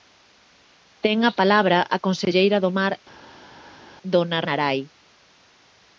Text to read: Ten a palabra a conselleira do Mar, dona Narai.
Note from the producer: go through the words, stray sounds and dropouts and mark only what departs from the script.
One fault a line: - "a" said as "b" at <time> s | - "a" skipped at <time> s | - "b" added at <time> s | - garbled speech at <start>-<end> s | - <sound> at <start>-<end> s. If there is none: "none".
none